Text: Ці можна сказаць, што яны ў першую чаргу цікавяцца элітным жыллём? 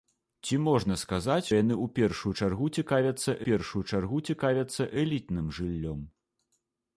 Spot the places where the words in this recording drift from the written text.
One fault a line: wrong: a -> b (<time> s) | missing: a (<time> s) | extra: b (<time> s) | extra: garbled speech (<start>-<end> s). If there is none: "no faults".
missing: што (1.5 s)
extra: першую чаргу цікавяцца (3.5 s)